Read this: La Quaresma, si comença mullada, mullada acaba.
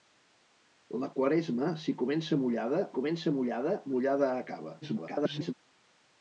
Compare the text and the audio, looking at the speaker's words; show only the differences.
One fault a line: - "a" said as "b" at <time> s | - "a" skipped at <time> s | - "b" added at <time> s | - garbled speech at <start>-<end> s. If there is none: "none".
- "comença mullada" added at 2.9 s
- garbled speech at 4.8-5.5 s